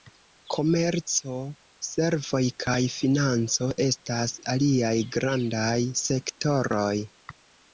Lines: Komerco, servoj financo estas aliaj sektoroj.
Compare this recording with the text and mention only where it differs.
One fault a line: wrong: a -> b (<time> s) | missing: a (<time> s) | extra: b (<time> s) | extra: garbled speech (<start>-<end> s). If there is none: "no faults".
extra: kaj (2.6 s)
extra: grandaj (5.2 s)